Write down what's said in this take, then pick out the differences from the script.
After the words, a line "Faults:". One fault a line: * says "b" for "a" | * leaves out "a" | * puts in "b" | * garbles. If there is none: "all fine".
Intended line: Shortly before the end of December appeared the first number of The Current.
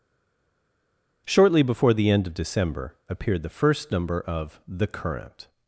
Shortly before the end of December appeared the first number of The Current.
Faults:
all fine